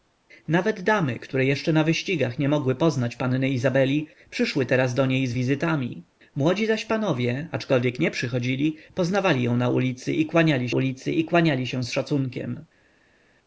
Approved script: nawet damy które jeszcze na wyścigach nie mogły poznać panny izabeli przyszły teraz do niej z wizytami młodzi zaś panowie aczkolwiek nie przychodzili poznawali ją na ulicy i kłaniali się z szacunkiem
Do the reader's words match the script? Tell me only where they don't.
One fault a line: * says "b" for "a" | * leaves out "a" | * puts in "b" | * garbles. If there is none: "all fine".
* puts in "ulicy i kłaniali"